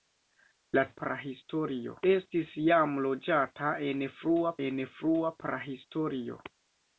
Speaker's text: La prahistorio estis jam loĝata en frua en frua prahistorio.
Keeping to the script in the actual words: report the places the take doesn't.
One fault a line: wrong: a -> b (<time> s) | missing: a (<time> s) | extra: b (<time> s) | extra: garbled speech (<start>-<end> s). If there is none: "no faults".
no faults